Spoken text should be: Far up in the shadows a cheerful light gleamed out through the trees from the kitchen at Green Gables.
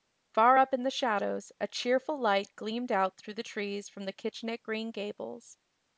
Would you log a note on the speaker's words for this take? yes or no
no